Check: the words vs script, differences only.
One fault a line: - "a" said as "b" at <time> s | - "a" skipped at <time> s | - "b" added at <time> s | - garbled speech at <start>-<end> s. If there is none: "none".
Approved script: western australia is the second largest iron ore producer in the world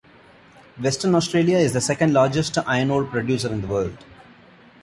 none